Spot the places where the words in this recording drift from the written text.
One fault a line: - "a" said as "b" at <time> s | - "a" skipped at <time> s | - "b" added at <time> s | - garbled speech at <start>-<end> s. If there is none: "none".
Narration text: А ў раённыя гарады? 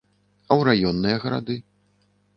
none